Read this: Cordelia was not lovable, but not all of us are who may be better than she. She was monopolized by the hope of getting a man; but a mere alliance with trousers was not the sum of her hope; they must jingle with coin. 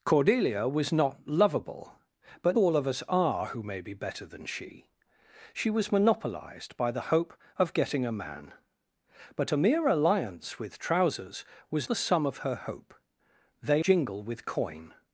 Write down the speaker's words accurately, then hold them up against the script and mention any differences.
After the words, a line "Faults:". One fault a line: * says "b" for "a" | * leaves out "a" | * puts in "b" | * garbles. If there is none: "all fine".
Cordelia was not lovable, but all of us are who may be better than she. She was monopolized by the hope of getting a man; but a mere alliance with trousers was the sum of her hope; they jingle with coin.
Faults:
* leaves out "not"
* leaves out "not"
* leaves out "must"